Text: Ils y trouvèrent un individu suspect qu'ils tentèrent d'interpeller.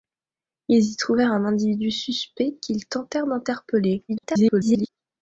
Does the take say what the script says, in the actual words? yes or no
no